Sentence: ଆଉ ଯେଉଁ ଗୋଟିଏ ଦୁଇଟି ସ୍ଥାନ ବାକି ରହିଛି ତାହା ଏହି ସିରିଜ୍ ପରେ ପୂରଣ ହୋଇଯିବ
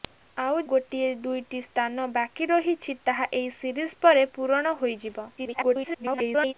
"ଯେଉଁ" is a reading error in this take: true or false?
true